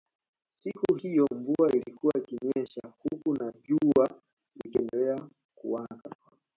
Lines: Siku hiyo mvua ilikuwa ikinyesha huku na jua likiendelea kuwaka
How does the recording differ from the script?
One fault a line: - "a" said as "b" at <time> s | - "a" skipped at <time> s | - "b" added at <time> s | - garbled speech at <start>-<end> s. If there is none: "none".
none